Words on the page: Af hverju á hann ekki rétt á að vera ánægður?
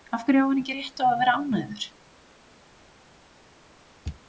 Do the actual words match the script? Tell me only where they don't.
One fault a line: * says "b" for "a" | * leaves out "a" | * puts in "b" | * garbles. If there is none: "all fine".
all fine